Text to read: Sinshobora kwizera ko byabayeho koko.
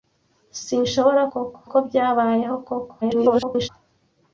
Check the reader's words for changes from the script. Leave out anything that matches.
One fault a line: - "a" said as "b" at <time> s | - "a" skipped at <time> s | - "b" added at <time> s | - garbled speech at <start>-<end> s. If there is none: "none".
- "kwizera" said as "koko" at 1.3 s
- garbled speech at 3.0-3.7 s